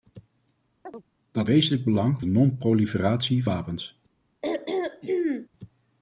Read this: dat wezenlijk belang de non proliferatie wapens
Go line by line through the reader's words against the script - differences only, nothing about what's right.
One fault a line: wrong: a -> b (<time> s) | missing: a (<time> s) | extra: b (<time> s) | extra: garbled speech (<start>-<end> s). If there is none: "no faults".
no faults